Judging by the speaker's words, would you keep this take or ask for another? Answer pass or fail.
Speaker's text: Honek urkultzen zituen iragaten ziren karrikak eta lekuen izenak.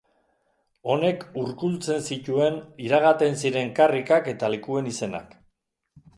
pass